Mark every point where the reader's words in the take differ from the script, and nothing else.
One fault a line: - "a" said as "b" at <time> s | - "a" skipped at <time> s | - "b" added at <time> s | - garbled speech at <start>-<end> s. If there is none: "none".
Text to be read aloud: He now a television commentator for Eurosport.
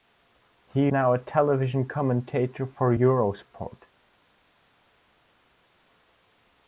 none